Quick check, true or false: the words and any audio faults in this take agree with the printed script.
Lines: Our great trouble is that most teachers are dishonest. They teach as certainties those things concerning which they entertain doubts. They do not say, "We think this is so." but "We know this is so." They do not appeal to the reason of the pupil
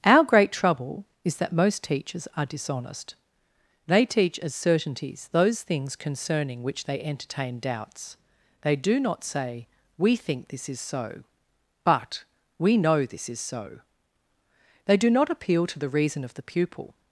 true